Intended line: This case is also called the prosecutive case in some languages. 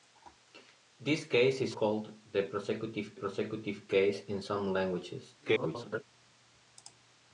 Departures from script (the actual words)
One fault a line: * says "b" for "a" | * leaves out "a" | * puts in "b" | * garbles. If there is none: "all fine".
* leaves out "also"
* puts in "prosecutive"
* garbles